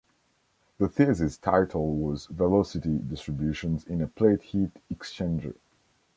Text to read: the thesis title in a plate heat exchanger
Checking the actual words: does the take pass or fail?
fail